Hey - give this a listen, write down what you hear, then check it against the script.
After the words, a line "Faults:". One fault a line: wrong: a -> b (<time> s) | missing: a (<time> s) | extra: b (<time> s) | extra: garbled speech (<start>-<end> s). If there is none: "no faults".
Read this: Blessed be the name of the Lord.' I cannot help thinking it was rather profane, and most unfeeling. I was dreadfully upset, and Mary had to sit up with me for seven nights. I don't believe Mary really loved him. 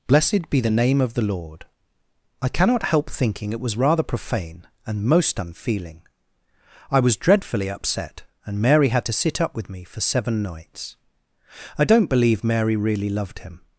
Blessed be the name of the Lord.' I cannot help thinking it was rather profane, and most unfeeling. I was dreadfully upset, and Mary had to sit up with me for seven nights. I don't believe Mary really loved him.
Faults:
no faults